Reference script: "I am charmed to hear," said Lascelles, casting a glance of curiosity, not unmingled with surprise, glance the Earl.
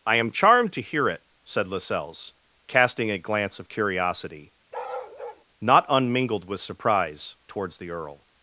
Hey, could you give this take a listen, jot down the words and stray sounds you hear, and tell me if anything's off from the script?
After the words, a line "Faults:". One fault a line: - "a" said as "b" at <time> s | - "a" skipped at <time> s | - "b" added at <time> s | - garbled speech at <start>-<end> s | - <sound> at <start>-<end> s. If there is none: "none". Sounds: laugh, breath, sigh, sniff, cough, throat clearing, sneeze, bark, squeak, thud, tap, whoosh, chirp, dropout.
"I am charmed to hear it," said Lascelles, casting a glance of curiosity, not unmingled with surprise, towards the Earl.
Faults:
- "it" added at 1.1 s
- bark at 4.7-5.4 s
- "glance" said as "towards" at 7.5 s